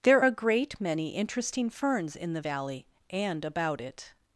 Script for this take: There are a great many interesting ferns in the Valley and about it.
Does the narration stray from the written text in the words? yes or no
yes